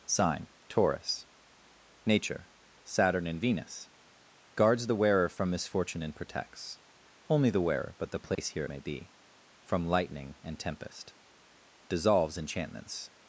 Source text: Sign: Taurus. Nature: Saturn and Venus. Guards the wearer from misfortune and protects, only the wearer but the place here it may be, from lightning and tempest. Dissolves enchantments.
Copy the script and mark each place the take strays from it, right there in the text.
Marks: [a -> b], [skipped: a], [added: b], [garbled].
Sign: Taurus. Nature: Saturn and Venus. Guards the wearer from misfortune and protects, only the wearer but the place here it may be, from lightning and tempest. Dissolves enchantments.